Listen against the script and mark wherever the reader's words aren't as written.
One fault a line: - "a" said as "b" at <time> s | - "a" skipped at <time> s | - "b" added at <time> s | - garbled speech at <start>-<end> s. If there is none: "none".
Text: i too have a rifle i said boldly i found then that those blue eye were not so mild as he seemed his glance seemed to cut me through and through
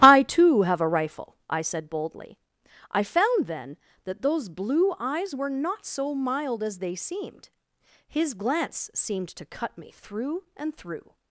- "eye" said as "eyes" at 5.0 s
- "he" said as "they" at 6.8 s